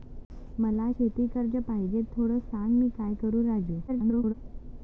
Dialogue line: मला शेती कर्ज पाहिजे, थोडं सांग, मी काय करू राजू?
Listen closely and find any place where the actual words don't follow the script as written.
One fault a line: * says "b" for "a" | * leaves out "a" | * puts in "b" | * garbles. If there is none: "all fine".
* garbles